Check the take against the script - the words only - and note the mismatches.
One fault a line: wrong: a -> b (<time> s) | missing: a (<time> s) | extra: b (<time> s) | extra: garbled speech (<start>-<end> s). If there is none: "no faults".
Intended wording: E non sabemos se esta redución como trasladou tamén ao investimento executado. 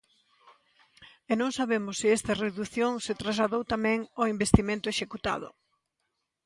wrong: como -> se (3.1 s)